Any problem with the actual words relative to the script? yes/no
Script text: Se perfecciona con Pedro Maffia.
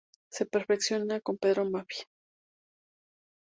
no